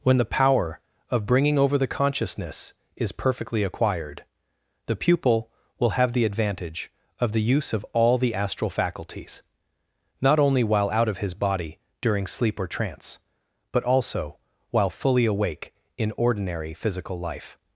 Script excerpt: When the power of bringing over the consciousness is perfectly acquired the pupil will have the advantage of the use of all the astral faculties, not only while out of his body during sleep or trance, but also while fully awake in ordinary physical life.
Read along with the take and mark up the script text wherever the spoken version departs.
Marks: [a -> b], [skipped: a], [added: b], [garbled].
When the power of bringing over the consciousness is perfectly acquired the pupil will have the advantage of the use of all the astral faculties, not only while out of his body during sleep or trance, but also while fully awake in ordinary physical life.